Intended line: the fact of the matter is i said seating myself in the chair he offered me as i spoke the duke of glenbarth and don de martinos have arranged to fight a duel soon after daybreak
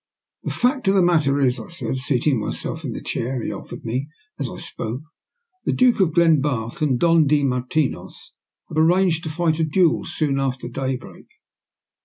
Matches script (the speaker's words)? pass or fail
pass